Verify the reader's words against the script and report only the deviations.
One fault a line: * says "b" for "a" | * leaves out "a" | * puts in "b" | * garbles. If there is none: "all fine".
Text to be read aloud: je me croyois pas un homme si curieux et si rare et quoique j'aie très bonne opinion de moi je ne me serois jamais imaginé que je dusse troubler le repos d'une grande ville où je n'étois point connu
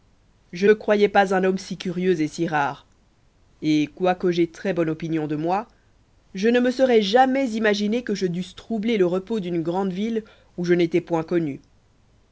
all fine